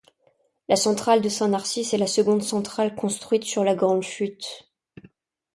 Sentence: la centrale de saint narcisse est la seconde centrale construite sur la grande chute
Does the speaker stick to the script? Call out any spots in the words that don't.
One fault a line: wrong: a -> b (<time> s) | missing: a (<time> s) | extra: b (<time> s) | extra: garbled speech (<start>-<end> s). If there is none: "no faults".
no faults